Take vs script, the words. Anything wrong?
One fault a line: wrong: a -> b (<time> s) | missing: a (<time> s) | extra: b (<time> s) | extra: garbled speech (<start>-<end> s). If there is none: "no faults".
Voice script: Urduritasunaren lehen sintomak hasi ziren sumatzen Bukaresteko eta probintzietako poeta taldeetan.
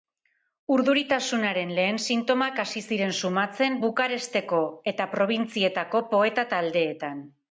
no faults